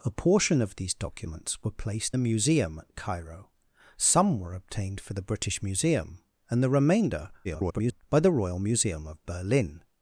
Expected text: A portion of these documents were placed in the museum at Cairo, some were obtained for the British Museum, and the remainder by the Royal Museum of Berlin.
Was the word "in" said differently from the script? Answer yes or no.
yes